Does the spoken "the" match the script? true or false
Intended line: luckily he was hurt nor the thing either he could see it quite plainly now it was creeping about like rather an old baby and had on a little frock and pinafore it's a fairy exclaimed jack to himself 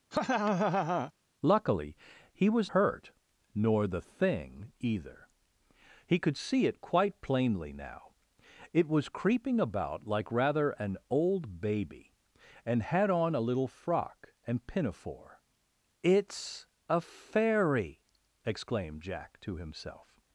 true